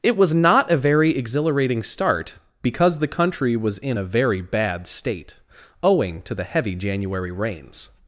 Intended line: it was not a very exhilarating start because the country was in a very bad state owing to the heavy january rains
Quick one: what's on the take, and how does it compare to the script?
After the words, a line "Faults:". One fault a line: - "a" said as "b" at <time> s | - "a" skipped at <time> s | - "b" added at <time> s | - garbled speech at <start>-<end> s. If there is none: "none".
it was not a very exhilarating start because the country was in a very bad state owing to the heavy january rains
Faults:
none